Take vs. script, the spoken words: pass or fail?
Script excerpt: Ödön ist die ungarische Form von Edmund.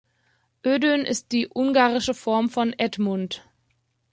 pass